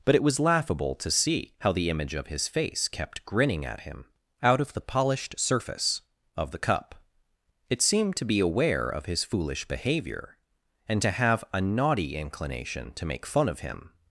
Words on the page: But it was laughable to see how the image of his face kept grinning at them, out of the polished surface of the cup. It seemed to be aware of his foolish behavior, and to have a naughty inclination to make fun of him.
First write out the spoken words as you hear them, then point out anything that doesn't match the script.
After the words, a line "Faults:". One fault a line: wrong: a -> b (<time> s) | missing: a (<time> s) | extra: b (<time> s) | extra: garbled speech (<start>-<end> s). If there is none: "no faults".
But it was laughable to see how the image of his face kept grinning at him, out of the polished surface of the cup. It seemed to be aware of his foolish behavior, and to have a naughty inclination to make fun of him.
Faults:
wrong: them -> him (3.8 s)